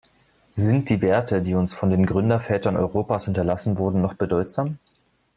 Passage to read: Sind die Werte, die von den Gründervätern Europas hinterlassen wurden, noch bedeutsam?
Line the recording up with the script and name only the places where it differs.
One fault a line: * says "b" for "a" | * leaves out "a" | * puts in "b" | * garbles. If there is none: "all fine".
* puts in "uns"